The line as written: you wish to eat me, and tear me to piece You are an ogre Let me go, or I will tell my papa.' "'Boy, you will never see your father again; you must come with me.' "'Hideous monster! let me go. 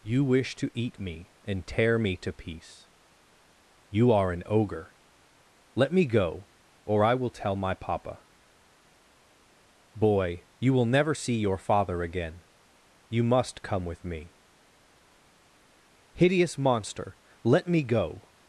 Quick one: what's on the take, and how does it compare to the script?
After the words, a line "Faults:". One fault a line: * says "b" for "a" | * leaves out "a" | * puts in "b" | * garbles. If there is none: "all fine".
you wish to eat me, and tear me to piece You are an ogre Let me go, or I will tell my papa.' "'Boy, you will never see your father again; you must come with me.' "'Hideous monster! let me go.
Faults:
all fine